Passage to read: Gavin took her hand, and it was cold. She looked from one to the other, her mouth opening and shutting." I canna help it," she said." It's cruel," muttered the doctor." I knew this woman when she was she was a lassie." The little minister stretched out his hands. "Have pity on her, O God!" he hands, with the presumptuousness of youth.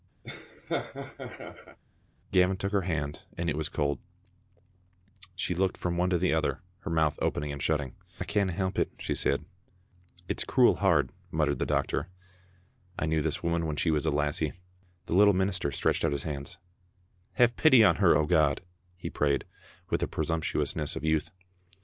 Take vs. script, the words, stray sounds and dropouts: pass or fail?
fail